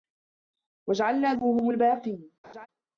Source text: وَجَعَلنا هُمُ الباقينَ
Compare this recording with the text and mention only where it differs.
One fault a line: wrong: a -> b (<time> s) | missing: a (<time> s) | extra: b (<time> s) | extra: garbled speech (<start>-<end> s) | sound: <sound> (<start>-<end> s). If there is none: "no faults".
sound: laugh (2.4-2.7 s)